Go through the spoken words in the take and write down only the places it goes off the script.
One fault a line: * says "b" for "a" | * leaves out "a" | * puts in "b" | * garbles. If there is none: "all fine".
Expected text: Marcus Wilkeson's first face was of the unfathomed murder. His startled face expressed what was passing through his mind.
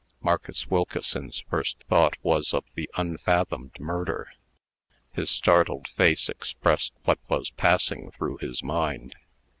* says "thought" for "face"